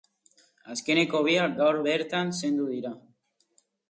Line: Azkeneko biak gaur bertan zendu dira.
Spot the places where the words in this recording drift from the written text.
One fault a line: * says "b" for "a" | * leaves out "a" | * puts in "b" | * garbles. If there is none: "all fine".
all fine